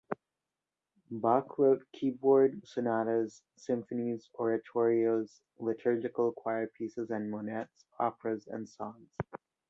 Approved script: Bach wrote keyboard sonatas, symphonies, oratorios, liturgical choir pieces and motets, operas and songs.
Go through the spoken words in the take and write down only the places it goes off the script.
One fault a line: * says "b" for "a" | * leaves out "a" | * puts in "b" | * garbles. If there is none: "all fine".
all fine